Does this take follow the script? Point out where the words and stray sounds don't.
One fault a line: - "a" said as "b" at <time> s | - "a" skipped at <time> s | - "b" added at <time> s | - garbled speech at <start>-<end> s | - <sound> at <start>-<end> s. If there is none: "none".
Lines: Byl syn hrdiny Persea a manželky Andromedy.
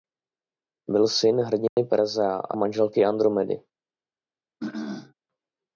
- dropout at 1.7-1.8 s
- throat clearing at 4.6-5.1 s